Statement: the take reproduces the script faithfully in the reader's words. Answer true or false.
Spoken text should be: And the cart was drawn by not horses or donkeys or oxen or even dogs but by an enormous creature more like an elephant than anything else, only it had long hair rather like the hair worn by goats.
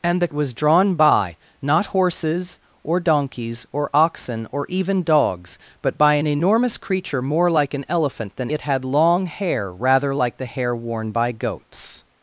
false